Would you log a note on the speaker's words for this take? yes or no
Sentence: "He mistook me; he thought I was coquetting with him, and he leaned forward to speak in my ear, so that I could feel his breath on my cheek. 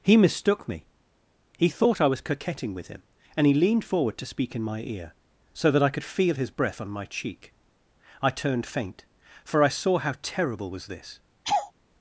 yes